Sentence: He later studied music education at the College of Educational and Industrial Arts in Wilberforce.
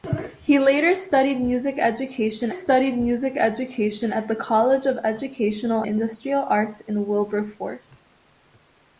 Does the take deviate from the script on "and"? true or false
true